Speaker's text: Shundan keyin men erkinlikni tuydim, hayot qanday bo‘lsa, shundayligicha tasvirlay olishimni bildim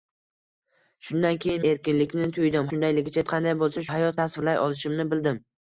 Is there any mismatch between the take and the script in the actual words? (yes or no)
yes